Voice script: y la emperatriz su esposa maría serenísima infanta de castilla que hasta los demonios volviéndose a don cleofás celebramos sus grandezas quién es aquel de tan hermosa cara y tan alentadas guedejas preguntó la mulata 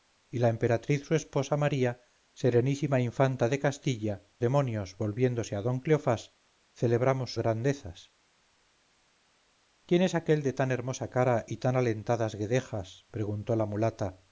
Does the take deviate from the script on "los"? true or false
true